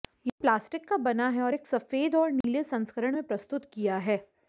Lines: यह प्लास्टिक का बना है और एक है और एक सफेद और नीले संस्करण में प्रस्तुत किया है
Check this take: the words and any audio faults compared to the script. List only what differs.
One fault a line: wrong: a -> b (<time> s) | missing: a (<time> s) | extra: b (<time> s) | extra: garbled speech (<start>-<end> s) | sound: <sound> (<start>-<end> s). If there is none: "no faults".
missing: है और एक (1.7 s)
sound: dropout (2.4-2.4 s)